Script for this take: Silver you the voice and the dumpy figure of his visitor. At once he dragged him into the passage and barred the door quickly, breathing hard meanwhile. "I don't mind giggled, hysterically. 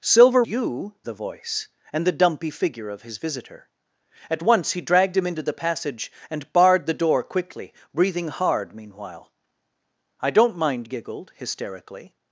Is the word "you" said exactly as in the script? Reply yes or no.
yes